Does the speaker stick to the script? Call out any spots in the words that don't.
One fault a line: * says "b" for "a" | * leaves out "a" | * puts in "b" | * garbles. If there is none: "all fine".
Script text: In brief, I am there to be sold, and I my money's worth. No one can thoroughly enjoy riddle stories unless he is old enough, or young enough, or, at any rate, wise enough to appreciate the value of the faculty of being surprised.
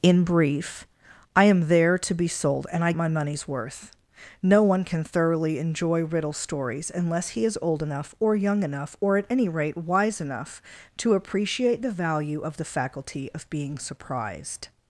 all fine